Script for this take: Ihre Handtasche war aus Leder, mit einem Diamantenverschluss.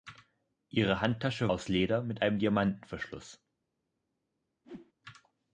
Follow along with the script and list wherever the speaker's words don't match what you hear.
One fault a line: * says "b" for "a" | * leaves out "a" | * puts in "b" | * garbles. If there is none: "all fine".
* leaves out "war"